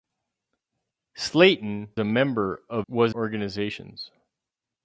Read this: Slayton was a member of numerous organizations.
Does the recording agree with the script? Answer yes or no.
no